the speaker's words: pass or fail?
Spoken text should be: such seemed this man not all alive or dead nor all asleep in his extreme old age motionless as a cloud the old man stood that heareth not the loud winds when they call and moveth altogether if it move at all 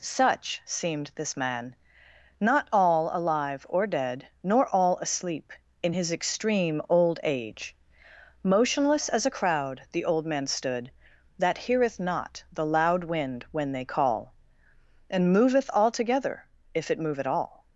fail